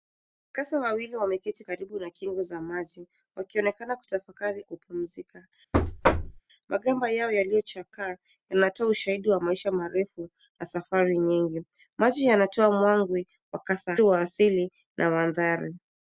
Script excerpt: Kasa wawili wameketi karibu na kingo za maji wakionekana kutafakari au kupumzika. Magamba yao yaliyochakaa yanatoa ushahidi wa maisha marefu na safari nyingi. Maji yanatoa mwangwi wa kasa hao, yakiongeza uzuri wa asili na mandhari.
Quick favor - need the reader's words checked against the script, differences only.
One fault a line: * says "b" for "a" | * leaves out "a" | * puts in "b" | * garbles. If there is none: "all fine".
* leaves out "au"
* leaves out "hao yakiongeza uzuri"